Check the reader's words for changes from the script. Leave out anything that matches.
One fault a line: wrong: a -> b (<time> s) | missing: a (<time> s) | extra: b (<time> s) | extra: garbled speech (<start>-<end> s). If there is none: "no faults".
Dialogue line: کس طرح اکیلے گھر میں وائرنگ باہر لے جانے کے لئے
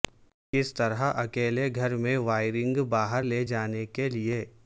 no faults